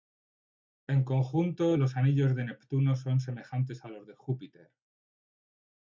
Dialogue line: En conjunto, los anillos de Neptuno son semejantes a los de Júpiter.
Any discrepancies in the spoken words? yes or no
no